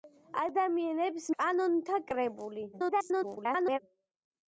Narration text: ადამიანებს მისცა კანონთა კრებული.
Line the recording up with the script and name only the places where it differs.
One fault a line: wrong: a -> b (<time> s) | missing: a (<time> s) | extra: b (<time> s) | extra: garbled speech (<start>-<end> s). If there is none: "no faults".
missing: მისცა (1.3 s)
extra: garbled speech (2.7-3.8 s)